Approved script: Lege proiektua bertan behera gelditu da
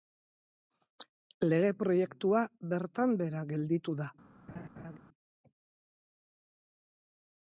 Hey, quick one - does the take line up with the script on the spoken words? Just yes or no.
yes